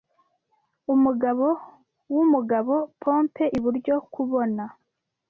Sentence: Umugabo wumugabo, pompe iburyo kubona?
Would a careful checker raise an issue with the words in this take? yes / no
no